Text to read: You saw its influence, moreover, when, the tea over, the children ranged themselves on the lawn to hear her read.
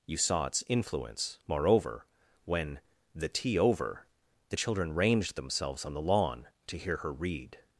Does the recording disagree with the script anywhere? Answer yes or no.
no